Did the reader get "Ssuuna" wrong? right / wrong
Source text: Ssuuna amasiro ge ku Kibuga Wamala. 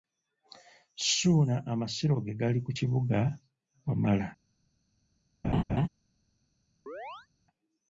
right